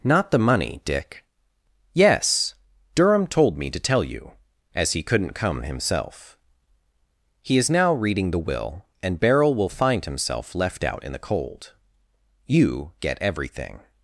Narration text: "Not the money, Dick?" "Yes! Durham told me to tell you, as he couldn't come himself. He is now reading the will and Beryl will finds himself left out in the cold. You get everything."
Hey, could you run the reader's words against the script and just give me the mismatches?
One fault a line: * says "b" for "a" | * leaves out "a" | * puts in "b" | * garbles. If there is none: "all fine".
* says "find" for "finds"